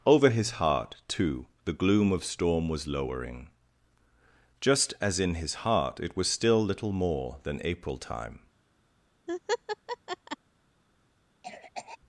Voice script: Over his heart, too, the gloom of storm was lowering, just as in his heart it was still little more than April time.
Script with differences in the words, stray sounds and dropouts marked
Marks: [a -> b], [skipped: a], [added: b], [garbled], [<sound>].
Over his heart, too, the gloom of storm was lowering, just as in his heart it was still little more than April time. [laugh] [cough]